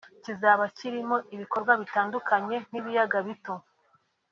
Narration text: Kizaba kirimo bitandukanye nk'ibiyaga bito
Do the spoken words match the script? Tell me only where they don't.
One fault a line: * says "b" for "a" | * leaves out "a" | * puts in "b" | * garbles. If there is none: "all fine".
* puts in "ibikorwa"